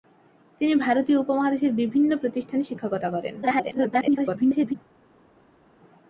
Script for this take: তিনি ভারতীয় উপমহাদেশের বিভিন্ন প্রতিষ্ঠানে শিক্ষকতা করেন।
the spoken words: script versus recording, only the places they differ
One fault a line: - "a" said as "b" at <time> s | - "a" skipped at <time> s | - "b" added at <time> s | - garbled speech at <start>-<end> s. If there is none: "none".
- garbled speech at 3.4-4.8 s